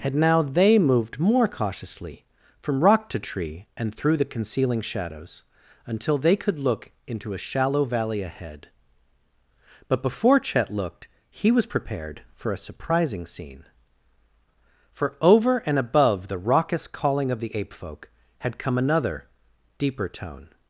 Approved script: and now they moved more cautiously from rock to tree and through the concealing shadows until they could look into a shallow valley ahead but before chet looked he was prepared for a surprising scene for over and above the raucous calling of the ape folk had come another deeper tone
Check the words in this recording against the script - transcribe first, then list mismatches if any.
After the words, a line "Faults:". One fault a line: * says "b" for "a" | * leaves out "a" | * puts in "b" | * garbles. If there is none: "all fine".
had now they moved more cautiously from rock to tree and through the concealing shadows until they could look into a shallow valley ahead but before chet looked he was prepared for a surprising scene for over and above the raucous calling of the ape folk had come another deeper tone
Faults:
* says "had" for "and"